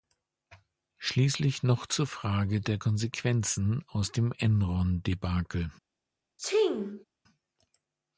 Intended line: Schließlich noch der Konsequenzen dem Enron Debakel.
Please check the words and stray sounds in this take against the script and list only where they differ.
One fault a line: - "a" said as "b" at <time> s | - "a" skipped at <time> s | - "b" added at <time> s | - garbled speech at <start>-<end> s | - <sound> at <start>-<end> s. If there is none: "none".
- "zur Frage" added at 1.9 s
- "aus" added at 3.9 s
- sneeze at 6.4-7.0 s